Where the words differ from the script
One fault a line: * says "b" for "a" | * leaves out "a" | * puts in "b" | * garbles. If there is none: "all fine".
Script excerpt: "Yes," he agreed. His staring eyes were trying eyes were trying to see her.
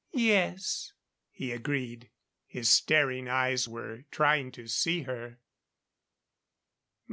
* leaves out "eyes were trying"